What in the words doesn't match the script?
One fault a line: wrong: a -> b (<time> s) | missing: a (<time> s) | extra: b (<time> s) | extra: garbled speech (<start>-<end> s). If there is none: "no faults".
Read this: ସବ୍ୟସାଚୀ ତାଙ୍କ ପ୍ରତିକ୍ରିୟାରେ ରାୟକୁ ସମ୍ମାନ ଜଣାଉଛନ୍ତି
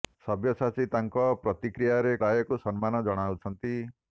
no faults